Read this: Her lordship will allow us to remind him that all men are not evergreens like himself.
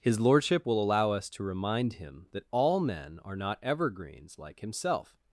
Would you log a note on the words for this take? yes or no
yes